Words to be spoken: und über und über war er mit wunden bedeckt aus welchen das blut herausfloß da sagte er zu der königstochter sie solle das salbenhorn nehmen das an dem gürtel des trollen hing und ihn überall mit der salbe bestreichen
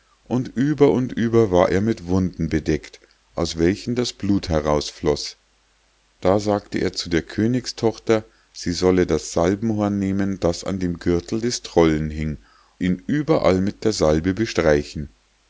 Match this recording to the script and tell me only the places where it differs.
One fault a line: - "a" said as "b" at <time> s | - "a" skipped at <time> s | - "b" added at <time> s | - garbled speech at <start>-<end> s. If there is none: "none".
- "und" skipped at 12.4 s